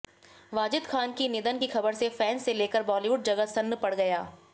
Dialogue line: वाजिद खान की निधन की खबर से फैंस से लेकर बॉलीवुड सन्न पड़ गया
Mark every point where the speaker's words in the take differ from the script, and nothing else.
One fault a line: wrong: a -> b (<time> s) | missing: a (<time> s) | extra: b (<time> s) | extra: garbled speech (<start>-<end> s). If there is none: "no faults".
extra: जगत (3.2 s)